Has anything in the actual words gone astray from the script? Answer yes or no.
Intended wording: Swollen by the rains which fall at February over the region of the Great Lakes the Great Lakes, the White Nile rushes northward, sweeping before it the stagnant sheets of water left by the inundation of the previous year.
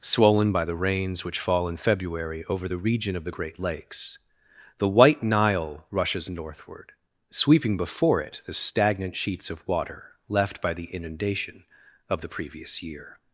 yes